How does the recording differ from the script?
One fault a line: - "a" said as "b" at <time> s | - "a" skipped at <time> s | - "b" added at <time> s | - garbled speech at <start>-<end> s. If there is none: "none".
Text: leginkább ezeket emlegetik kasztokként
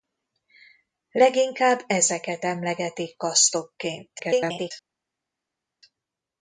- garbled speech at 4.2-4.7 s